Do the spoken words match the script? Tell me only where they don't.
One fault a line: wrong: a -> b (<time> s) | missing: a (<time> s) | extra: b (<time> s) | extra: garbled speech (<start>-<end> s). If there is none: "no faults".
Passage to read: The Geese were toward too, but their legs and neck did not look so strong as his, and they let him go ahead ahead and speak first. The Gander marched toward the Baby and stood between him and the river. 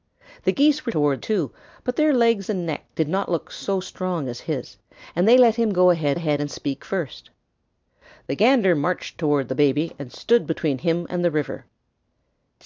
no faults